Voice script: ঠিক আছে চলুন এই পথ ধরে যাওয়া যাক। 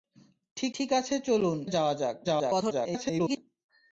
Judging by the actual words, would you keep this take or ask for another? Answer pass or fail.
fail